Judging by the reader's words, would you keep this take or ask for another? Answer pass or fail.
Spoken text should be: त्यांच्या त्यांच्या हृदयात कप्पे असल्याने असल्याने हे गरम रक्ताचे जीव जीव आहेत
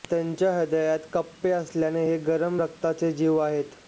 fail